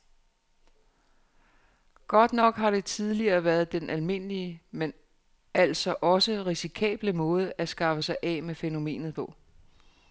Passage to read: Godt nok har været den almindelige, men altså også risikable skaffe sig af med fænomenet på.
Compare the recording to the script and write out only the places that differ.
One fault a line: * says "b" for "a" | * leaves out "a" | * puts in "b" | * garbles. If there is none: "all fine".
* puts in "det tidligere"
* puts in "måde at"